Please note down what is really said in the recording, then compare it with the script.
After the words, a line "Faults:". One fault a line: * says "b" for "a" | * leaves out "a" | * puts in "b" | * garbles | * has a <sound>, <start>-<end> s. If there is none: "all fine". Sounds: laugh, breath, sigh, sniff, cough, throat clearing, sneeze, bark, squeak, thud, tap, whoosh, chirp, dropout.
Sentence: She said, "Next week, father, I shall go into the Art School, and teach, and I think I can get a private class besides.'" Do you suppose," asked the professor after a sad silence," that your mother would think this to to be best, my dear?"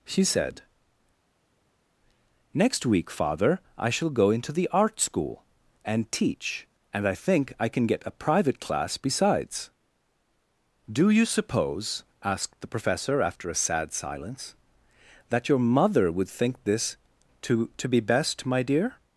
She said, "Next week, father, I shall go into the Art School, and teach, and I think I can get a private class besides.'" Do you suppose," asked the professor after a sad silence," that your mother would think this to to be best, my dear?"
Faults:
all fine